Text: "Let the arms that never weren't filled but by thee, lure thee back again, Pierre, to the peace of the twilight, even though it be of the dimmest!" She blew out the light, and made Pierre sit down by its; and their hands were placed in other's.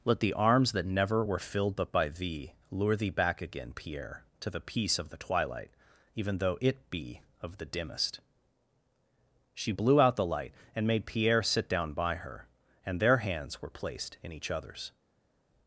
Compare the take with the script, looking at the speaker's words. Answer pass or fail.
fail